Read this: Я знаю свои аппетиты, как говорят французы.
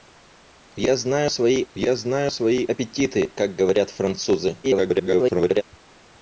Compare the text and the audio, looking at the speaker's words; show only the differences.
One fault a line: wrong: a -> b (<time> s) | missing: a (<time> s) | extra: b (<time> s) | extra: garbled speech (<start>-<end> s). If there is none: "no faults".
extra: я знаю свои (1.7 s)
extra: garbled speech (4.6-5.6 s)